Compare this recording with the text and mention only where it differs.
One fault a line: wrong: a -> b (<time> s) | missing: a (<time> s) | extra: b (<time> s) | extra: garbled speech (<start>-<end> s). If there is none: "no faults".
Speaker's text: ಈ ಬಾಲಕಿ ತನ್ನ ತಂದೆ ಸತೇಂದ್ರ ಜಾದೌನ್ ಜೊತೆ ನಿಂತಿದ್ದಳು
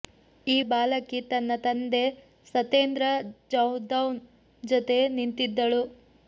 no faults